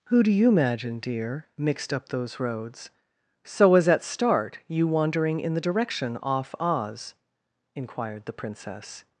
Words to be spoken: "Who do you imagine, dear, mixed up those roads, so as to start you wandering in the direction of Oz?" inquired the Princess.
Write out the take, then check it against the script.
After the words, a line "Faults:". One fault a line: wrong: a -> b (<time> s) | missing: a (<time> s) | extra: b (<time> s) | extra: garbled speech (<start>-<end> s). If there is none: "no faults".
"Who do you imagine, dear, mixed up those roads, so as at start you wandering in the direction off Oz?" inquired the Princess.
Faults:
wrong: to -> at (3.9 s)
wrong: of -> off (6.2 s)